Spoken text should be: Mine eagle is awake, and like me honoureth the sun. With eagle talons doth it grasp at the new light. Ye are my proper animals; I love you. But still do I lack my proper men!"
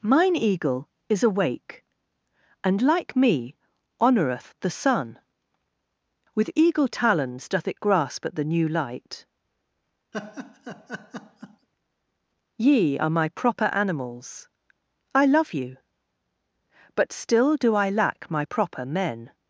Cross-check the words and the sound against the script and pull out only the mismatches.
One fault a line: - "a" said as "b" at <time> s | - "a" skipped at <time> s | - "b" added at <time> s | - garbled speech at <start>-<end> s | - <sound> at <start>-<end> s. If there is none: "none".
- laugh at 10.1-11.7 s